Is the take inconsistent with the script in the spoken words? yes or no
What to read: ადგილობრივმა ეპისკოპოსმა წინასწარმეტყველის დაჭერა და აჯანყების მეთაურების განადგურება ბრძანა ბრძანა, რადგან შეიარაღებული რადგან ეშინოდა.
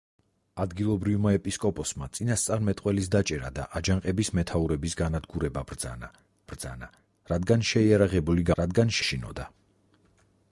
no